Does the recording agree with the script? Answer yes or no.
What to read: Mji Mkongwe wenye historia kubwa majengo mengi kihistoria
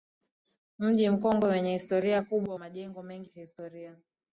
yes